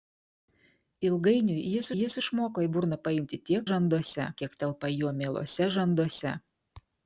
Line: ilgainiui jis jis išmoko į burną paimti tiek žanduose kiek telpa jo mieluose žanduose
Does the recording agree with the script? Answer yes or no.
yes